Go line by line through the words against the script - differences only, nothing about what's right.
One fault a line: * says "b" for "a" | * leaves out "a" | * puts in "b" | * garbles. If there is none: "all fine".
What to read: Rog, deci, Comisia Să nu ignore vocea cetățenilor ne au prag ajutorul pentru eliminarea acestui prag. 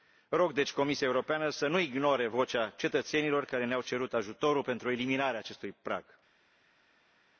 * puts in "Europeană"
* puts in "care"
* says "cerut" for "prag"